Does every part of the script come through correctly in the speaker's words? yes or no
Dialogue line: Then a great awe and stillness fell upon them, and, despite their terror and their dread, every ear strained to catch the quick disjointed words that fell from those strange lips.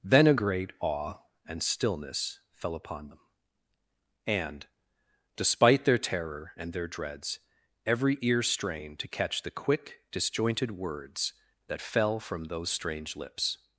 no